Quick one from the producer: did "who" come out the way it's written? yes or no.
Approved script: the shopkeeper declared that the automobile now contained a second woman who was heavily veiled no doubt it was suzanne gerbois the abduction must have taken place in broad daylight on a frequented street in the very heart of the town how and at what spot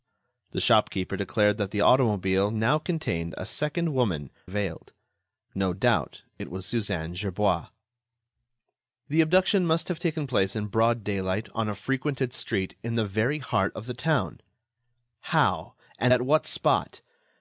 no